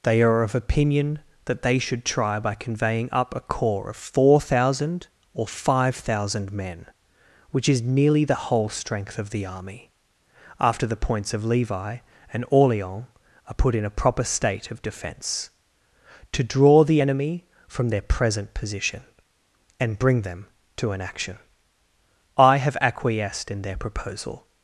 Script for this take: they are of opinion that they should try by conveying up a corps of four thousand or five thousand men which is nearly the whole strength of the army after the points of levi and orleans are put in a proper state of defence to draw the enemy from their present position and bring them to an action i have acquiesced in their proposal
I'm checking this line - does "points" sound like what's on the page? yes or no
yes